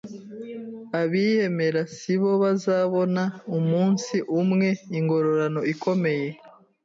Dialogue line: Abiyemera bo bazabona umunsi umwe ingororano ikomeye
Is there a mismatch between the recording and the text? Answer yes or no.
yes